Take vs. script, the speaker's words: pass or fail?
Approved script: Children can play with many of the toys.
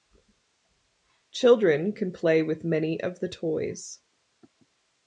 pass